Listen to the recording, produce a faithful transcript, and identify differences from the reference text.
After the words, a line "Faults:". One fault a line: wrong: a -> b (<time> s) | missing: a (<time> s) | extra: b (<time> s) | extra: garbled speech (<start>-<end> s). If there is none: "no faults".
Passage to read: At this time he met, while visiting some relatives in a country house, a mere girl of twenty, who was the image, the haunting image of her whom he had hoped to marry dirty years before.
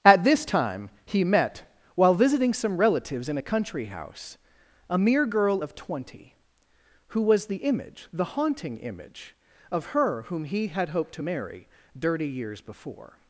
At this time he met, while visiting some relatives in a country house, a mere girl of twenty, who was the image, the haunting image of her whom he had hoped to marry dirty years before.
Faults:
no faults